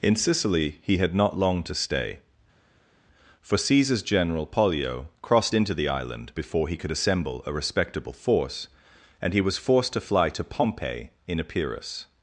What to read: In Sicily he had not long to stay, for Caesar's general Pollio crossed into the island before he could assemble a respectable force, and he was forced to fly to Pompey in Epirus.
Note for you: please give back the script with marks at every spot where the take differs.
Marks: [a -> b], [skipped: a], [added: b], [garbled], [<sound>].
In Sicily he had not long to stay, for Caesar's general Pollio crossed into the island before he could assemble a respectable force, and he was forced to fly to Pompey in Epirus.